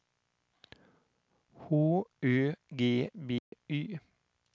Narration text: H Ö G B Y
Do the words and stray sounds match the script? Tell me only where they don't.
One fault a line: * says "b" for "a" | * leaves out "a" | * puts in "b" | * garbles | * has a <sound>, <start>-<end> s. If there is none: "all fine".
* has a dropout, 3.4-3.5 s